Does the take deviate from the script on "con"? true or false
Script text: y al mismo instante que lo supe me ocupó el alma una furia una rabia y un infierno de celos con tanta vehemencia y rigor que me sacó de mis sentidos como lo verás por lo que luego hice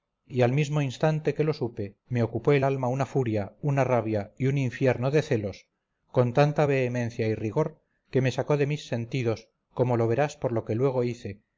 false